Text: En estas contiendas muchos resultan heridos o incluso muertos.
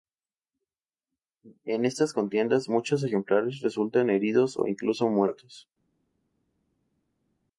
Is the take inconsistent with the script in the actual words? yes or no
yes